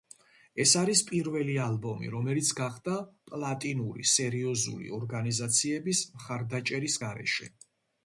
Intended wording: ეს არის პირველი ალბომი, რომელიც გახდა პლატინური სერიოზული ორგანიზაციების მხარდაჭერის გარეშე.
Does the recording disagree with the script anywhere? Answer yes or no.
no